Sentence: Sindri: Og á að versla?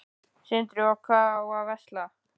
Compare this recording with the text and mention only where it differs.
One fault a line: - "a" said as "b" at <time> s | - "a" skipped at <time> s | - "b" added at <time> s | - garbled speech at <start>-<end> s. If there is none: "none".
- "hvað" added at 1.1 s